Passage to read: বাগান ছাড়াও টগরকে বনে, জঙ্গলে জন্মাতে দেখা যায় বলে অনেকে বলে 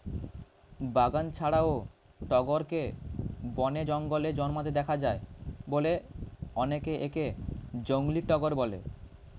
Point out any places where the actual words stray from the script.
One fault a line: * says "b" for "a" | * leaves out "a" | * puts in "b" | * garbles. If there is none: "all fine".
* puts in "একে জংলী টগর"